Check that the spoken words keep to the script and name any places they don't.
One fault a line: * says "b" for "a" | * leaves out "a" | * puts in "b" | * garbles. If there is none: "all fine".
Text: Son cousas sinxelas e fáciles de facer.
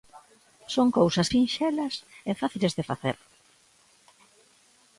all fine